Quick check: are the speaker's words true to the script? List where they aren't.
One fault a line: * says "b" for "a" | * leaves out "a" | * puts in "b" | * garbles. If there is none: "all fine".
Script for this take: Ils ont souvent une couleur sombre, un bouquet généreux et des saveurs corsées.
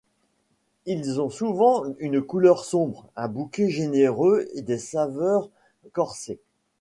all fine